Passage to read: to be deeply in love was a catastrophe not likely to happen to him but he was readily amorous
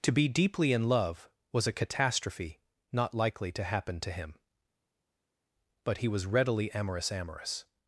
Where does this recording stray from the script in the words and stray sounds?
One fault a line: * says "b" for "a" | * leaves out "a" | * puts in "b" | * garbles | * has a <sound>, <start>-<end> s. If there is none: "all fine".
* puts in "amorous"